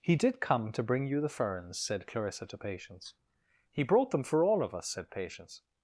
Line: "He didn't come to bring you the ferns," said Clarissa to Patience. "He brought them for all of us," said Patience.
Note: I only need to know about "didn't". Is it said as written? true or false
false